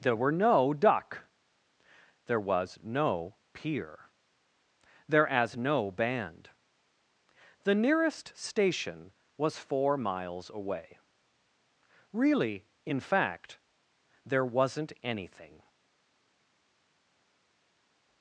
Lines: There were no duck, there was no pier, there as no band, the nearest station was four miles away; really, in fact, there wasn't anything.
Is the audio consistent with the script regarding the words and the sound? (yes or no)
yes